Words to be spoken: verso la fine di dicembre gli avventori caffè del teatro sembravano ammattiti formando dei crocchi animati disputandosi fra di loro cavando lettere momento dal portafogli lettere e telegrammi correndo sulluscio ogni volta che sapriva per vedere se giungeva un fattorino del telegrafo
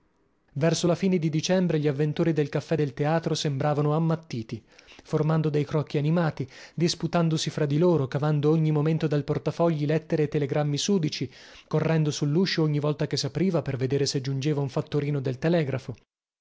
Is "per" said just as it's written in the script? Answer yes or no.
yes